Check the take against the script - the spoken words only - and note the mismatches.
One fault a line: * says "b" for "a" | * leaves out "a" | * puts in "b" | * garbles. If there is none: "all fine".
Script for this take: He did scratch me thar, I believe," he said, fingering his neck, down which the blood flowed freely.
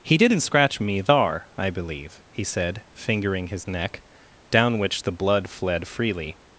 * says "didn't" for "did"
* says "fled" for "flowed"